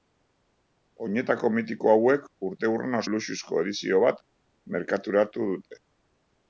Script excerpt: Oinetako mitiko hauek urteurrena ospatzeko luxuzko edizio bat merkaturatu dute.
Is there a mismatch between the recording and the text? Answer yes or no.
yes